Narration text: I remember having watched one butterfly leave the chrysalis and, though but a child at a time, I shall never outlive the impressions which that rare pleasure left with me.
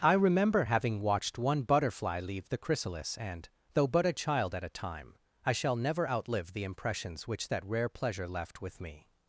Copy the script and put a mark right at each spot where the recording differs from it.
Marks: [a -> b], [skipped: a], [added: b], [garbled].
I remember having watched one butterfly leave the chrysalis and, though but a child at a time, I shall never outlive the impressions which that rare pleasure left with me.